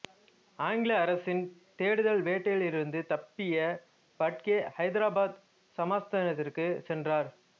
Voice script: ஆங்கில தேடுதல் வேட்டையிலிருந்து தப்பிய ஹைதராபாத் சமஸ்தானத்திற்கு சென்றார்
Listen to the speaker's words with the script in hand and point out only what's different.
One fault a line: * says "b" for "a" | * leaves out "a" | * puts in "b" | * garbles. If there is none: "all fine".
* puts in "அரசின்"
* puts in "பட்கே"